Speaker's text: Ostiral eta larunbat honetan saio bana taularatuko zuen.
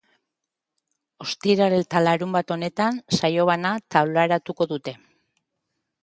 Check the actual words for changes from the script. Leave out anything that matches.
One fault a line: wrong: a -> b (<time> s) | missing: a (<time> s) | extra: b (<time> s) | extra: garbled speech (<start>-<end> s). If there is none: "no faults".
wrong: zuen -> dute (4.7 s)